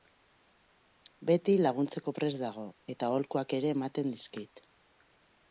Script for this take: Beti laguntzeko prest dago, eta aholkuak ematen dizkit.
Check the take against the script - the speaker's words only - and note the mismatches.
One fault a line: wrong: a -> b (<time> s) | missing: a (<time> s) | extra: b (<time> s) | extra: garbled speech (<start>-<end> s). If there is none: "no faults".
extra: ere (3.6 s)